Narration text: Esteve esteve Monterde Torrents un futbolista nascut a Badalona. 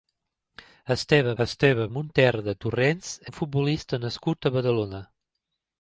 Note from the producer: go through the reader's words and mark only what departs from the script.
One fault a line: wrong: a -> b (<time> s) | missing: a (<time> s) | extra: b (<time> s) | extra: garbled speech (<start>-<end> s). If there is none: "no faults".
no faults